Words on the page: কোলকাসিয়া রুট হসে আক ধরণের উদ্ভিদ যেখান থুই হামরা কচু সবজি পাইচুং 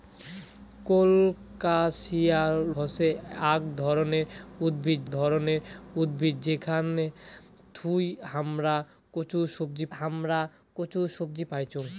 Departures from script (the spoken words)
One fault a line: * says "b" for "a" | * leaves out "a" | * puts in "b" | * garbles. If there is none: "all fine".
* leaves out "রুট"
* puts in "ধরণের উদ্ভিদ"
* puts in "হামরা কচু সবজি"